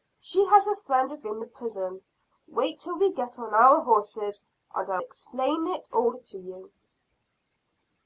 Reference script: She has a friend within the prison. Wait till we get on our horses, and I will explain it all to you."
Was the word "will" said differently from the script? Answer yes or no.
yes